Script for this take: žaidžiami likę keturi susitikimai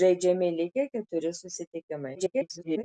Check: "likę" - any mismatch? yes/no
no